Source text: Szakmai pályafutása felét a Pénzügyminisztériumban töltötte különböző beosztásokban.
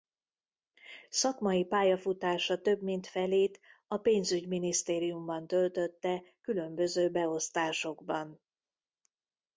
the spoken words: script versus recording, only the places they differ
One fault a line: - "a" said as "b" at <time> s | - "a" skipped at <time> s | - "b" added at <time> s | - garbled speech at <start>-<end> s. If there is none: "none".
- "több mint" added at 2.6 s